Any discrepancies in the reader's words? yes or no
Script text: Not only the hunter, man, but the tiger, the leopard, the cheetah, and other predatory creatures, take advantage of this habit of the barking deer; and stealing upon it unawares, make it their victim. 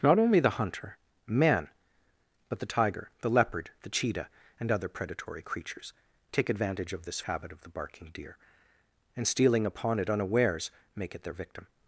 no